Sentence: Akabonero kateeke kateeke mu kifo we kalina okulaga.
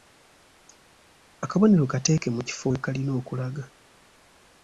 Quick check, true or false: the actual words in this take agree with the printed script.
false